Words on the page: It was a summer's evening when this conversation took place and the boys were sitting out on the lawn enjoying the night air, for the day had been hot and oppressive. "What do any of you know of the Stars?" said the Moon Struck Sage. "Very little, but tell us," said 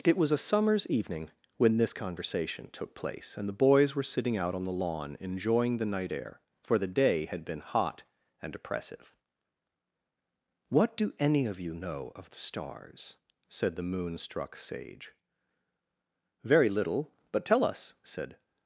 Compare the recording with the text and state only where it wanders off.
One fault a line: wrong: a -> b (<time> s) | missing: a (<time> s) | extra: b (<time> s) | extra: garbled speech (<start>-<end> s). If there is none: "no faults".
no faults